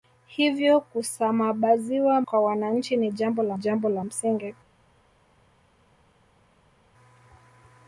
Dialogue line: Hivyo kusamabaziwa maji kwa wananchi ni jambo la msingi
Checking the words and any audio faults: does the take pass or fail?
fail